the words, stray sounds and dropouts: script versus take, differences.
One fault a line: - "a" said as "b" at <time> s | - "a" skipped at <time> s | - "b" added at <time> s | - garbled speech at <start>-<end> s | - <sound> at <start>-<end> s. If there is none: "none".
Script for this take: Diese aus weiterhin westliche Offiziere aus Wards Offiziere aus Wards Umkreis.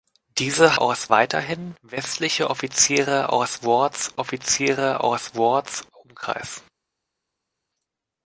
none